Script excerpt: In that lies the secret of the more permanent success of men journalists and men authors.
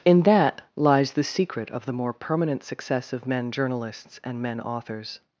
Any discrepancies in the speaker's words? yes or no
no